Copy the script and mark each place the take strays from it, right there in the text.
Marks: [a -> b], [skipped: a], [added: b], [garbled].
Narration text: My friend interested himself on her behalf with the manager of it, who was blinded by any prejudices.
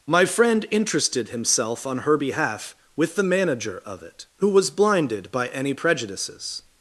My friend interested himself on her behalf with the manager of it, who was blinded by any prejudices.